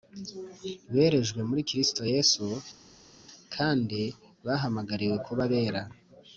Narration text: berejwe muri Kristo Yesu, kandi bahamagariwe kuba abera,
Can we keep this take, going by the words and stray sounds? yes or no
yes